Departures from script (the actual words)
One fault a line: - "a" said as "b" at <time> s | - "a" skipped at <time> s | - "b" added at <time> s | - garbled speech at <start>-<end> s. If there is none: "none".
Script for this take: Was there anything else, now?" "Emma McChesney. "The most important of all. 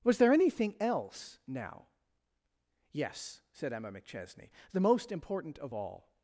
- "Yes said" added at 2.9 s